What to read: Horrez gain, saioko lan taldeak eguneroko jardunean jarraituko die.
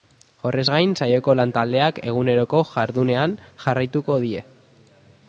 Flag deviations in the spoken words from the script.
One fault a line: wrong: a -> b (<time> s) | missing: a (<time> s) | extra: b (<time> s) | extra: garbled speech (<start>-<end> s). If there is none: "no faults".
no faults